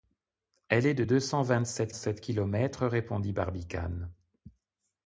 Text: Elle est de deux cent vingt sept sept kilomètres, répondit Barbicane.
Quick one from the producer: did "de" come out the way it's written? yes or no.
yes